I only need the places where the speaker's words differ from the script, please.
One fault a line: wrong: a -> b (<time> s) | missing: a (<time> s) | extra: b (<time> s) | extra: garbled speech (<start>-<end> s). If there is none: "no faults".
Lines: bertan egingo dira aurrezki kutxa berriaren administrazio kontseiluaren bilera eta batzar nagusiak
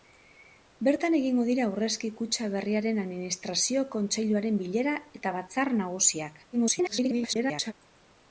extra: garbled speech (6.5-7.7 s)